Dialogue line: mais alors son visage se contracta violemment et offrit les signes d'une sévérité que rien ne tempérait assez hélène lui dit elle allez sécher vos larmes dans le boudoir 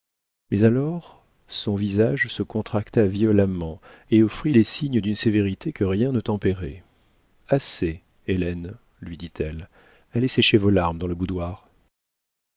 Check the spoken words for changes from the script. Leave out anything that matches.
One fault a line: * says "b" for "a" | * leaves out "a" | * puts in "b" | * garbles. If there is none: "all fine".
all fine